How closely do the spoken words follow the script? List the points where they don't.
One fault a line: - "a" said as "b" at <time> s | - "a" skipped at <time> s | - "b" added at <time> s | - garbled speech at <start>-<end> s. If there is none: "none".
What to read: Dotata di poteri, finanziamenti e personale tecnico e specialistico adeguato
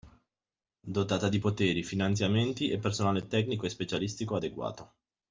none